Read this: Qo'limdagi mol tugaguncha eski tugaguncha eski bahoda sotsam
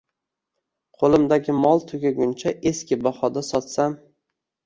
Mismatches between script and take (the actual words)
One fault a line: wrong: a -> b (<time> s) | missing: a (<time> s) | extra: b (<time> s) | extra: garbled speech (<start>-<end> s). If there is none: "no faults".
missing: tugaguncha eski (3.0 s)